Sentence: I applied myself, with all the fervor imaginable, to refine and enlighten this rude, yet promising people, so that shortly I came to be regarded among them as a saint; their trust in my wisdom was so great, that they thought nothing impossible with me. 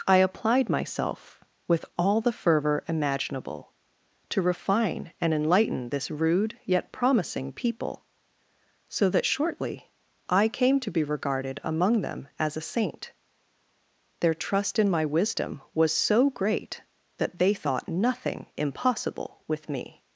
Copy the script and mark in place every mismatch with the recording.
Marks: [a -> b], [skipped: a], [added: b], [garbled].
I applied myself, with all the fervor imaginable, to refine and enlighten this rude, yet promising people, so that shortly I came to be regarded among them as a saint; their trust in my wisdom was so great, that they thought nothing impossible with me.